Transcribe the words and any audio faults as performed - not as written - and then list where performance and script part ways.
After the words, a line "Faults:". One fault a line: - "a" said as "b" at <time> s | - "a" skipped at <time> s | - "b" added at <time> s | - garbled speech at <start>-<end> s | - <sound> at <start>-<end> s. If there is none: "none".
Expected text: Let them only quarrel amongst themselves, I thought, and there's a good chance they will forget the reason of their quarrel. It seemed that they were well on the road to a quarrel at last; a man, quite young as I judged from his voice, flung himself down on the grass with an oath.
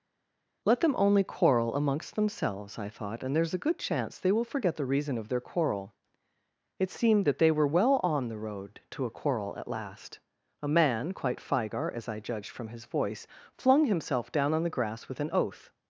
Let them only quarrel amongst themselves, I thought, and there's a good chance they will forget the reason of their quarrel. It seemed that they were well on the road to a quarrel at last; a man, quite figar as I judged from his voice, flung himself down on the grass with an oath.
Faults:
- "young" said as "figar" at 11.4 s